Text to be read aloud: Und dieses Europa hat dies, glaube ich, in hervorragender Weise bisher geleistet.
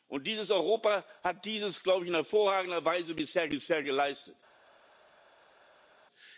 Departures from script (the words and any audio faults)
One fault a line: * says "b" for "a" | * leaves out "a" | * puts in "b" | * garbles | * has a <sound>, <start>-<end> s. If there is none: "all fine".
* puts in "bisher"